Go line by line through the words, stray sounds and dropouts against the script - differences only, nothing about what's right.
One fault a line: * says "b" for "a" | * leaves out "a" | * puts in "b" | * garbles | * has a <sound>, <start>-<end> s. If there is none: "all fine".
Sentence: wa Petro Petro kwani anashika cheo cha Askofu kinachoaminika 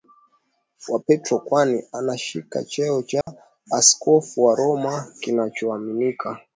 * leaves out "Petro"
* has a dropout, 3.2-3.3 s
* puts in "wa Roma"